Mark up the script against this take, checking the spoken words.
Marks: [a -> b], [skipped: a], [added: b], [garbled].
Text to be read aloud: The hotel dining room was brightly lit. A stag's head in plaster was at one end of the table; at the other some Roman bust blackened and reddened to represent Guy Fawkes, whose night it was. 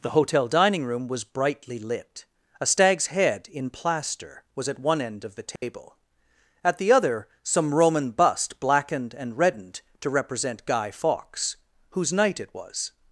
The hotel dining room was brightly lit. A stag's head in plaster was at one end of the table; at the other some Roman bust blackened and reddened to represent Guy Fawkes, whose night it was.